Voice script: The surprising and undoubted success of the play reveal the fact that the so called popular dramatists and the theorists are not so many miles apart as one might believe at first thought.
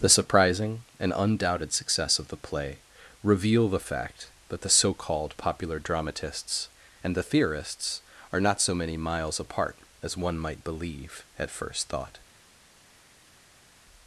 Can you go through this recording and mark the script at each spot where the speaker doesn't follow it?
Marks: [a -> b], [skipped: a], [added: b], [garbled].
The surprising and undoubted success of the play reveal the fact that the so called popular dramatists and the theorists are not so many miles apart as one might believe at first thought.